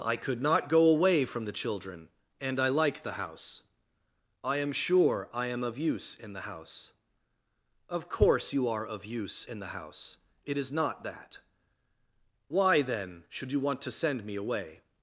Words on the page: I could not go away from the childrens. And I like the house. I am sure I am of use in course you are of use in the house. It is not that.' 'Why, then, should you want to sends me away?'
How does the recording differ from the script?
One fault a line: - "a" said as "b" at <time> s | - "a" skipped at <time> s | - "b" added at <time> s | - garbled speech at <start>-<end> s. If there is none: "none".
- "childrens" said as "children" at 1.5 s
- "the house Of" added at 6.3 s
- "sends" said as "send" at 14.0 s